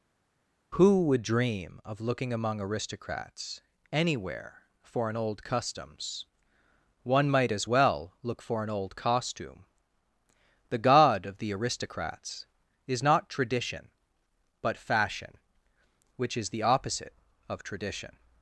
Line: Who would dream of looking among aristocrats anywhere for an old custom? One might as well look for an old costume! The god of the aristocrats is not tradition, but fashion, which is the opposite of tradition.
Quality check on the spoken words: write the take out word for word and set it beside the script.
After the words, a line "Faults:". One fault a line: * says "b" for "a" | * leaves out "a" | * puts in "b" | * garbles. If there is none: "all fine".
Who would dream of looking among aristocrats anywhere for an old customs? One might as well look for an old costume! The god of the aristocrats is not tradition, but fashion, which is the opposite of tradition.
Faults:
* says "customs" for "custom"